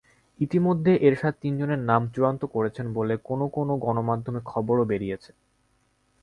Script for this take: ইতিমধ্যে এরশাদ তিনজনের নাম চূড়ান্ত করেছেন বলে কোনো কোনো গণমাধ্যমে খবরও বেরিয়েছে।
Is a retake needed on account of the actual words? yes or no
no